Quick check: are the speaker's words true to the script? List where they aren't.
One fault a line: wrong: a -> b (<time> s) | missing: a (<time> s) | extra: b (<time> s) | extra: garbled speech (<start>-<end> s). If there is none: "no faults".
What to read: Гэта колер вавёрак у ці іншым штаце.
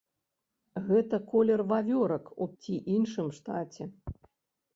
no faults